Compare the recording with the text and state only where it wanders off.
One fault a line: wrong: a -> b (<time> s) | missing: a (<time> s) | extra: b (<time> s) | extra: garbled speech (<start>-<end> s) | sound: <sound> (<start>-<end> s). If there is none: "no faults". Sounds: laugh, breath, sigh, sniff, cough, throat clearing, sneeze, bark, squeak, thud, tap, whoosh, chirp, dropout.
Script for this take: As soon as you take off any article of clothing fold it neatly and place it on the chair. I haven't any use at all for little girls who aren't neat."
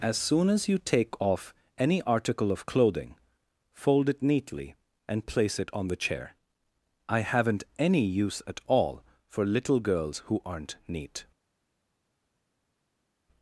no faults